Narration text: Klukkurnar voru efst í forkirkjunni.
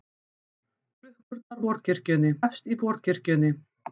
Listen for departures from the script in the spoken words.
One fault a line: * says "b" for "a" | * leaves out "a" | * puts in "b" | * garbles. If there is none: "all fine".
* says "forkirkjunni" for "voru"